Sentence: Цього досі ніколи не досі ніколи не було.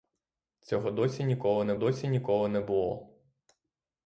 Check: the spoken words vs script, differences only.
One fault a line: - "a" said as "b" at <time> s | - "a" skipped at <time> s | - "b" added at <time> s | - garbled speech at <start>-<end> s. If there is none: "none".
none